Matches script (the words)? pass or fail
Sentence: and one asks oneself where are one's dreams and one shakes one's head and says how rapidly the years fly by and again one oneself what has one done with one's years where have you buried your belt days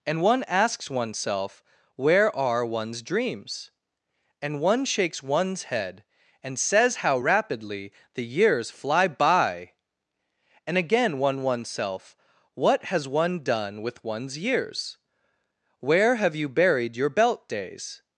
pass